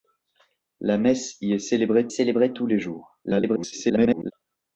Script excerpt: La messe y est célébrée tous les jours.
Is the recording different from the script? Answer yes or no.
yes